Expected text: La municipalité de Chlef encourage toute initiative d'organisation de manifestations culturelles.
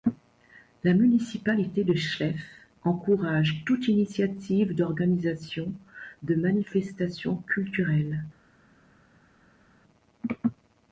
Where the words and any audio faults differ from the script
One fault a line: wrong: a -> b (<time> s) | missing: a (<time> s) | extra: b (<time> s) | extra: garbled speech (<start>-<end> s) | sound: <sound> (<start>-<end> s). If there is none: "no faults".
no faults